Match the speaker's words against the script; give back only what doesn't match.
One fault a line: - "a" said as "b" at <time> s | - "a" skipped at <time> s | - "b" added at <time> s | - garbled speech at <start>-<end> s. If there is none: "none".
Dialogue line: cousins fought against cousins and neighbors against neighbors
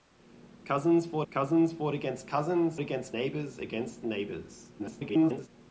- "cousins fought" added at 1.3 s
- "and" said as "against" at 2.8 s
- garbled speech at 4.8-5.5 s